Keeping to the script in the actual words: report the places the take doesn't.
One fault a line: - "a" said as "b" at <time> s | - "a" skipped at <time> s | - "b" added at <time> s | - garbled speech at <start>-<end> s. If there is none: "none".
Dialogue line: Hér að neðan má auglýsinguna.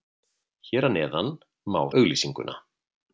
none